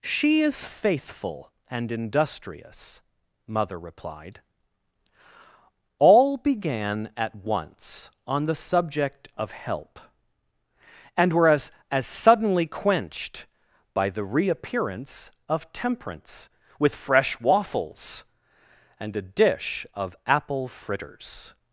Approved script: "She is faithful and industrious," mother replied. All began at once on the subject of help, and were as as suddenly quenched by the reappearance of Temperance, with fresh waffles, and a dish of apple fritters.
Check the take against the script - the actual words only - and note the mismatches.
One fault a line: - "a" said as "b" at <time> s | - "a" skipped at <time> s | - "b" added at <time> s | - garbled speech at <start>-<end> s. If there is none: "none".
none